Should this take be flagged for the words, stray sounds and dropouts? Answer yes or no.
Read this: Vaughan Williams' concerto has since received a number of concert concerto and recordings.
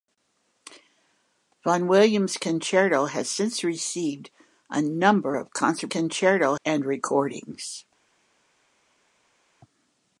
no